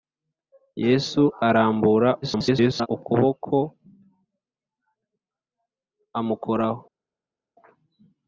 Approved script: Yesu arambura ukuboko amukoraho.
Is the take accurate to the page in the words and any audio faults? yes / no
no